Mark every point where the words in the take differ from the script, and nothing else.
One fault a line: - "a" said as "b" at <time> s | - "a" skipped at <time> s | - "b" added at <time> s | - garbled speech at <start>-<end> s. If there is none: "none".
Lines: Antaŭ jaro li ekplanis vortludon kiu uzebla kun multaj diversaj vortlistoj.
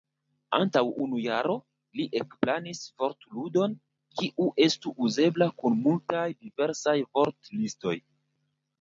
- "unu" added at 1.0 s
- "estu" added at 4.7 s